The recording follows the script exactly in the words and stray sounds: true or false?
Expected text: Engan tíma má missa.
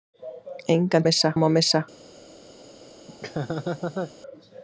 false